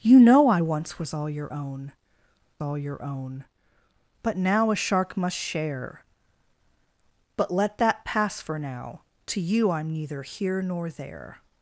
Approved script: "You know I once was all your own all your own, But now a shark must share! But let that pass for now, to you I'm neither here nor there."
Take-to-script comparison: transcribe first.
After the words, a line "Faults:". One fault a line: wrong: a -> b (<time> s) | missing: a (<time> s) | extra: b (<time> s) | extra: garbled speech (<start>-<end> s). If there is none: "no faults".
"You know I once was all your own all your own, But now a shark must share! But let that pass for now, to you I'm neither here nor there."
Faults:
no faults